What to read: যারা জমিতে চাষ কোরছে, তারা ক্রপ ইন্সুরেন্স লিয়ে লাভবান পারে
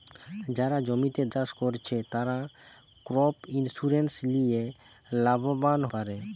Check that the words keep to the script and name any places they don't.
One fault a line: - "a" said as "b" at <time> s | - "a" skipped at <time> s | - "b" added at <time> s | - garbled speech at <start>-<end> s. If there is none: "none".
none